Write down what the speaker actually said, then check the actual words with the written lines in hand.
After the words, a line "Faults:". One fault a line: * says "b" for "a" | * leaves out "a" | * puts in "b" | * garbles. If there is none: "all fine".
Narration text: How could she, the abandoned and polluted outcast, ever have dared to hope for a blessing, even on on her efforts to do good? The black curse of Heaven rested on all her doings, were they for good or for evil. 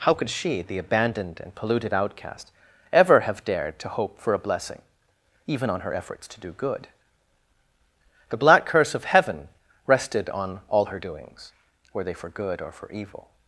How could she, the abandoned and polluted outcast, ever have dared to hope for a blessing, even on her efforts to do good? The black curse of Heaven rested on all her doings, were they for good or for evil.
Faults:
* leaves out "on"